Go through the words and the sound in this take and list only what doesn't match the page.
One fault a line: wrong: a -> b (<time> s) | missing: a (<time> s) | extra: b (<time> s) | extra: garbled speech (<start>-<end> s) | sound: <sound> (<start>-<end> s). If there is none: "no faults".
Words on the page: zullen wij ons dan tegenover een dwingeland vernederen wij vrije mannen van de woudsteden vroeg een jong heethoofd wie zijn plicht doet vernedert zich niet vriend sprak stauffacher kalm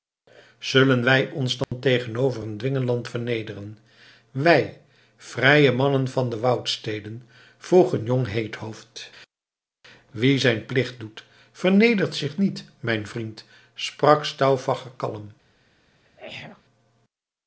sound: dropout (1.6-1.7 s)
extra: mijn (12.8 s)
sound: throat clearing (16.0-16.6 s)